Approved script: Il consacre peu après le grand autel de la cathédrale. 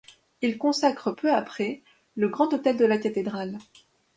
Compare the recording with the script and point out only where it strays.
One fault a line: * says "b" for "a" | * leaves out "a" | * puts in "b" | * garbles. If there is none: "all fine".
all fine